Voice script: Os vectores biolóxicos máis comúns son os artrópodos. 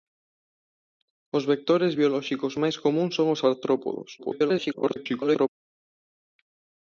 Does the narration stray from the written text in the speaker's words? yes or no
yes